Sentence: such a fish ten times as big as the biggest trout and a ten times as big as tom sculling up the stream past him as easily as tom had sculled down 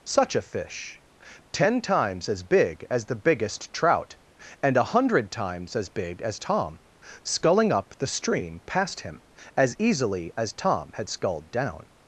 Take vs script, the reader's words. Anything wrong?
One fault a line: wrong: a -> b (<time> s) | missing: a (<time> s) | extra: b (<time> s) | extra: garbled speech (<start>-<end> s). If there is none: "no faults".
wrong: ten -> hundred (5.0 s)